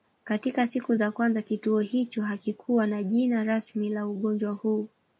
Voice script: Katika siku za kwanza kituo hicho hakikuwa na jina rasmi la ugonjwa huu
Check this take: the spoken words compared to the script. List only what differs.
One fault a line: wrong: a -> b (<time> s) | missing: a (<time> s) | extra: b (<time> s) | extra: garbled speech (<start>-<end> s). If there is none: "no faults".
no faults